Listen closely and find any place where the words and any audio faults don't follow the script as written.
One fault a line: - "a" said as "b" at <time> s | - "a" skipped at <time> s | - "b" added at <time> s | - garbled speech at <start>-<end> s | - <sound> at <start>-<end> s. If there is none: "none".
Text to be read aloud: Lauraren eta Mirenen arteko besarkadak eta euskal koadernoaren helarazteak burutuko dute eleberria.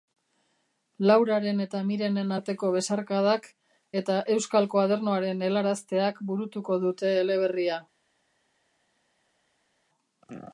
none